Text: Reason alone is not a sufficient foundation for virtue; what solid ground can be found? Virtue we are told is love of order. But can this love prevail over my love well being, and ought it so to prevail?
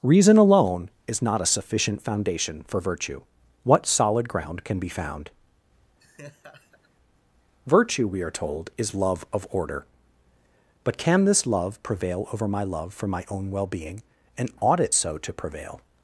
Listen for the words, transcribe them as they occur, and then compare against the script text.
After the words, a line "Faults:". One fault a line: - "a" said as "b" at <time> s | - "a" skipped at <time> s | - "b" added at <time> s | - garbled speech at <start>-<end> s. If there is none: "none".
Reason alone is not a sufficient foundation for virtue; what solid ground can be found? Virtue we are told is love of order. But can this love prevail over my love for my own well being, and ought it so to prevail?
Faults:
- "for my own" added at 12.9 s